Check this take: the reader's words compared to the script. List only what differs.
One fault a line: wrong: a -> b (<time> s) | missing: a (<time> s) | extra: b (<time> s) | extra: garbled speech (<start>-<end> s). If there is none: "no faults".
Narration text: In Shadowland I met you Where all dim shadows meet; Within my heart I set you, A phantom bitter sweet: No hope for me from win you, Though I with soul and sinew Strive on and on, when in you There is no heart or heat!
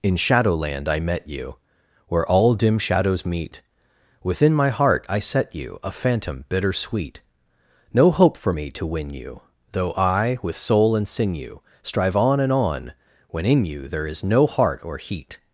wrong: from -> to (8.7 s)